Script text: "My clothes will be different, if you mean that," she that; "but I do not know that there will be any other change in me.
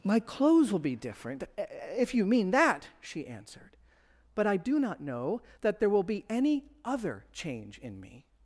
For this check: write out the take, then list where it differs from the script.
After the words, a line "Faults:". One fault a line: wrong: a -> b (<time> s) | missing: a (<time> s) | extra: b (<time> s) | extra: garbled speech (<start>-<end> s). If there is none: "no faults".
"My clothes will be different, if you mean that," she answered; "but I do not know that there will be any other change in me.
Faults:
wrong: that -> answered (3.3 s)